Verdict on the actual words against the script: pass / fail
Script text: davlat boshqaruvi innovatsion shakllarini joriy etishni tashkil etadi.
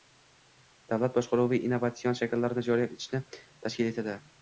pass